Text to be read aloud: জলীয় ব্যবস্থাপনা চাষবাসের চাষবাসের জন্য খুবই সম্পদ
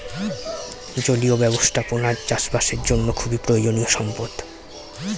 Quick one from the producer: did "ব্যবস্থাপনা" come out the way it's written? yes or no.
yes